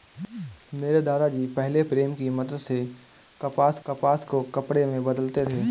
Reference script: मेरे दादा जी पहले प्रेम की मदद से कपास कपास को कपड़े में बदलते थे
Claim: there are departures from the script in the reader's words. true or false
false